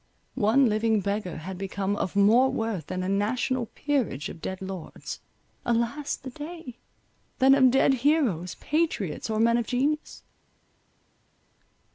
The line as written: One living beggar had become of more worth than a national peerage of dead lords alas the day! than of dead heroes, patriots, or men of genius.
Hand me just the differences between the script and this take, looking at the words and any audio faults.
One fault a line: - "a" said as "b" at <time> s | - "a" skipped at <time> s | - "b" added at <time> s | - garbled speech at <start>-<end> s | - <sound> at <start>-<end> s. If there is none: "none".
none